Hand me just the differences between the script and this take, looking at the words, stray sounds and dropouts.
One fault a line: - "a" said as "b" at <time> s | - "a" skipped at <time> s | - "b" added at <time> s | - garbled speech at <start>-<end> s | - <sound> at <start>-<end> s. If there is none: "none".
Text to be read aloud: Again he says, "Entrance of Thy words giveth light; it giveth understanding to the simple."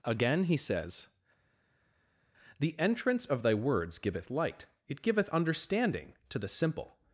- "The" added at 2.6 s